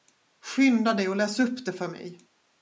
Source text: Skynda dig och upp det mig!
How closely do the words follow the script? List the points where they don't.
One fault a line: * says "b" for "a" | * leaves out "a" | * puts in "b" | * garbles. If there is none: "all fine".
* puts in "läs"
* puts in "för"